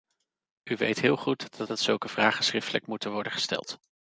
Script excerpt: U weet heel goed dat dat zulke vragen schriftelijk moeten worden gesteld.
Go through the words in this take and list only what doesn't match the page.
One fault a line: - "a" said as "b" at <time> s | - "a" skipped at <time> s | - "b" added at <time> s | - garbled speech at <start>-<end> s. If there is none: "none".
none